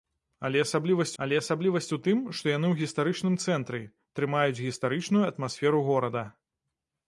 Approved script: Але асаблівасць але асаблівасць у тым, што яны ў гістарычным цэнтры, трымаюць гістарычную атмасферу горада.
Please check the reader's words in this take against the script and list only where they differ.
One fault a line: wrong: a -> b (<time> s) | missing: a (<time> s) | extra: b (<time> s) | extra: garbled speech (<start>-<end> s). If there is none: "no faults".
no faults